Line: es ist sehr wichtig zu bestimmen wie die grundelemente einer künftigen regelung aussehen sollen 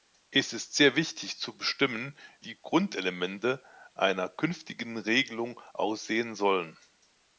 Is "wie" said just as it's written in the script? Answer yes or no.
no